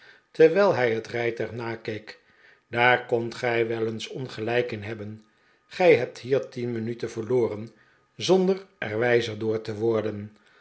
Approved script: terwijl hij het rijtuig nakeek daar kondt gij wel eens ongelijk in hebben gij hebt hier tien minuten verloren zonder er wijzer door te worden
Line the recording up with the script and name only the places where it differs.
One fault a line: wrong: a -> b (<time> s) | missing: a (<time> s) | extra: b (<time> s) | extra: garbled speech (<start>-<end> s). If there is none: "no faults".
no faults